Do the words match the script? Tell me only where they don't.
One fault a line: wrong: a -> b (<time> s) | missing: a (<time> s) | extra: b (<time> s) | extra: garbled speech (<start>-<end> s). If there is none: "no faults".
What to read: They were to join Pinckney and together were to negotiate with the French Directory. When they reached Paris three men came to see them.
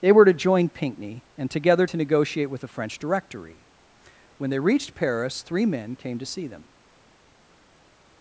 missing: were (1.9 s)